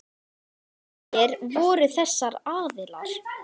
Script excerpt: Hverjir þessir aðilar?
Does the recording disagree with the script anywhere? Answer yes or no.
yes